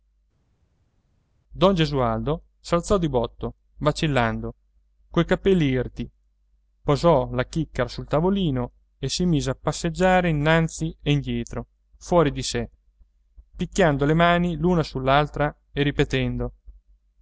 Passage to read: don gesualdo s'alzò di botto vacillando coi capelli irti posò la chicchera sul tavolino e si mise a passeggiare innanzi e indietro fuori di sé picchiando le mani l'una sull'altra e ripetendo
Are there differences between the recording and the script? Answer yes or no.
no